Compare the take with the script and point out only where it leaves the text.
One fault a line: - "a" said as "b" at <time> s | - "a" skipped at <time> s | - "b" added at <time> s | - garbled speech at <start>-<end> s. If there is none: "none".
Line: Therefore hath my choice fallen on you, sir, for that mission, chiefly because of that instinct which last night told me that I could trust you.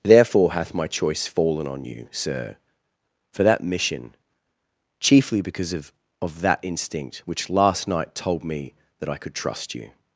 - "of" added at 6.2 s